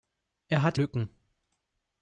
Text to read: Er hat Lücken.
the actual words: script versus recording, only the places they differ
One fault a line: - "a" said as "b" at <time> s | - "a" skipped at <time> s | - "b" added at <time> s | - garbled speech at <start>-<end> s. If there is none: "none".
none